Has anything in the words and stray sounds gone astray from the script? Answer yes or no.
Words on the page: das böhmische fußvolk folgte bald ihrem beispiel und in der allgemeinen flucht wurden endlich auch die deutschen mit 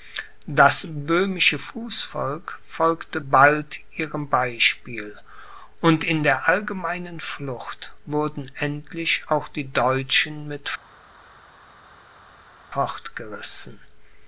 no